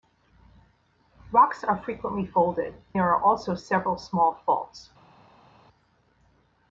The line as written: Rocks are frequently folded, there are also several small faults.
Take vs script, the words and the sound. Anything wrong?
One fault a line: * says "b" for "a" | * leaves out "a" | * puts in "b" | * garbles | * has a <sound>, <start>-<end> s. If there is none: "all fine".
all fine